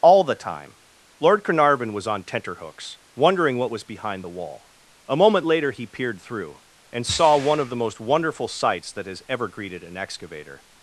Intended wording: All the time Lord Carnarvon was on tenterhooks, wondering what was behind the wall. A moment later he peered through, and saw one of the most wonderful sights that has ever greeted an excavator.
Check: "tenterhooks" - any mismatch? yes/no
no